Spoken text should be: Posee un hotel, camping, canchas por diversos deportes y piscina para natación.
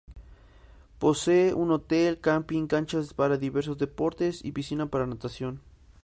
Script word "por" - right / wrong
wrong